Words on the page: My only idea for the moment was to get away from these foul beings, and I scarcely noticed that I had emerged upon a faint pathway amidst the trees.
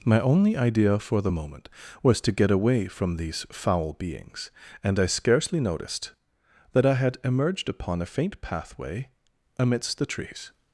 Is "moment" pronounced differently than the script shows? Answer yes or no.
no